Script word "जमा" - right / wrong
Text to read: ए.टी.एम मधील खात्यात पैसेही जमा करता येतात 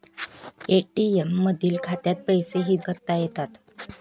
wrong